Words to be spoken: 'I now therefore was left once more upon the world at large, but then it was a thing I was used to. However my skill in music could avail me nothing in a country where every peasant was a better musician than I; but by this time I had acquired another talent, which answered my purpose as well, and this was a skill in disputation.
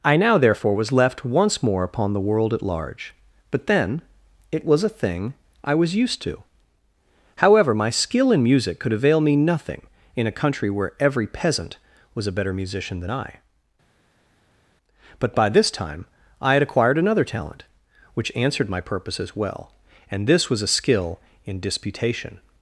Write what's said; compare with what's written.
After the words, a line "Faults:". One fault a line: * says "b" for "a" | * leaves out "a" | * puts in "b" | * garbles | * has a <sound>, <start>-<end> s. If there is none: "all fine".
'I now therefore was left once more upon the world at large, but then it was a thing I was used to. However my skill in music could avail me nothing in a country where every peasant was a better musician than I; but by this time I had acquired another talent, which answered my purpose as well, and this was a skill in disputation.
Faults:
all fine